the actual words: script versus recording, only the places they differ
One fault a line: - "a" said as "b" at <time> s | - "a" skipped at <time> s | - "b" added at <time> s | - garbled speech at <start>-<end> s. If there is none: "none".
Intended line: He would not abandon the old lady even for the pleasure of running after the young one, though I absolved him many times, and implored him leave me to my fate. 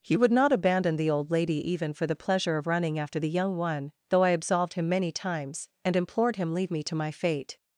none